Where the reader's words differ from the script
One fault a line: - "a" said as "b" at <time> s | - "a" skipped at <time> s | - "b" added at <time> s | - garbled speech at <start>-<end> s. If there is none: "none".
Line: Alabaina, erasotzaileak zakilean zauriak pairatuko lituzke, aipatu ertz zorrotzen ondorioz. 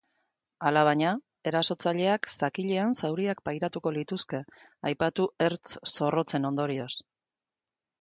none